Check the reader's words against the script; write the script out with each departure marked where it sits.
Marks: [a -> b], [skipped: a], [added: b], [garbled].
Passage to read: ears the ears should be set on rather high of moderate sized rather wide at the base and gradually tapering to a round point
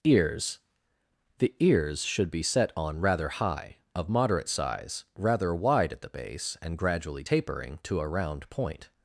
ears the ears should be set on rather high of moderate [sized -> size] rather wide at the base and gradually tapering to a round point